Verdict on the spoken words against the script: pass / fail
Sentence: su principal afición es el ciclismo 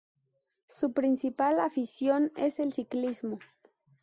pass